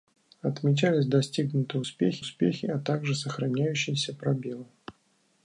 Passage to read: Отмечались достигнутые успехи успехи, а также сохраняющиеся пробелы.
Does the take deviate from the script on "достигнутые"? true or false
false